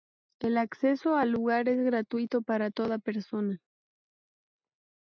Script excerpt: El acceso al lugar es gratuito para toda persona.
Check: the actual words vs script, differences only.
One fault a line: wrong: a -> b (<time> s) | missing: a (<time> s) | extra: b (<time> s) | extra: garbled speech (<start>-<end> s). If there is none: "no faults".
no faults